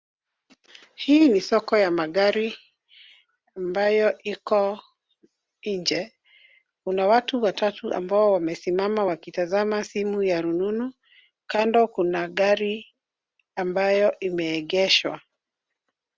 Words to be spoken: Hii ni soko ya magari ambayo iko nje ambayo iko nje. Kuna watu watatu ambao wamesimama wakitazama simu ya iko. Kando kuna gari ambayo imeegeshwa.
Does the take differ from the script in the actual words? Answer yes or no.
yes